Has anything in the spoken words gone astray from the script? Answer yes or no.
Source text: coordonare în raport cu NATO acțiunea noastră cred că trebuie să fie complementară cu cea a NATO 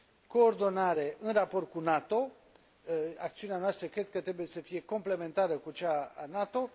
no